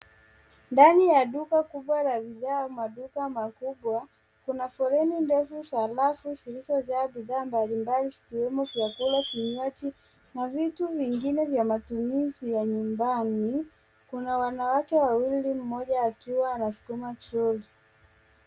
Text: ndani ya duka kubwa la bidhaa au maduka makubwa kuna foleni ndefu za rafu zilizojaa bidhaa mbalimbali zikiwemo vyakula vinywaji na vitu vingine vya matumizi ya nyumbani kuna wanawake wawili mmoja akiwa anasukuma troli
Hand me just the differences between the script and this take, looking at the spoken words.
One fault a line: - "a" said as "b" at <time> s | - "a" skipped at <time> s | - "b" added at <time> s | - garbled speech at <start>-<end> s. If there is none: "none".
none